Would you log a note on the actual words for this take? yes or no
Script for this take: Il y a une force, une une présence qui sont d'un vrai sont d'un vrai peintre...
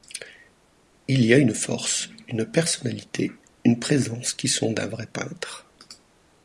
yes